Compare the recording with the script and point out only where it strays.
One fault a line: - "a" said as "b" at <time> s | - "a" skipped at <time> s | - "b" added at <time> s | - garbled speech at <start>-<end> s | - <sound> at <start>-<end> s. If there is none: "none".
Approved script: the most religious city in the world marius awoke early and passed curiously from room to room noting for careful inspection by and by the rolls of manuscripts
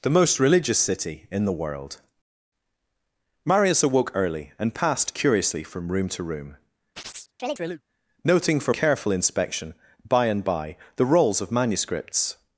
- chirp at 7.0-7.8 s